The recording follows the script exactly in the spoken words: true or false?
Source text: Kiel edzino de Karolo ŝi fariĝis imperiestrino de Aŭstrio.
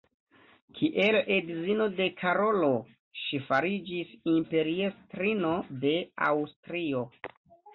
true